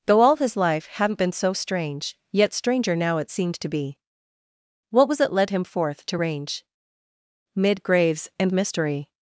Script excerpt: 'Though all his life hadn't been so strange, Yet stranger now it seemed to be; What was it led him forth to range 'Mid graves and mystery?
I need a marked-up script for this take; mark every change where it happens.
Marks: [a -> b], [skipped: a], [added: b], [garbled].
'Though all his life hadn't been so strange, Yet stranger now it seemed to be; What was it led him forth to range 'Mid graves and mystery?